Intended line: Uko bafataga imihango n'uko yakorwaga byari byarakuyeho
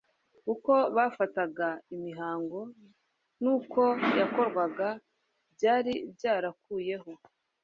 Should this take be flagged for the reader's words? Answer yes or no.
no